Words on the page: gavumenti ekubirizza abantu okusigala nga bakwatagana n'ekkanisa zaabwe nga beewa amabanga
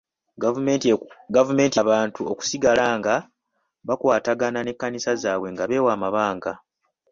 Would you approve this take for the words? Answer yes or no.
no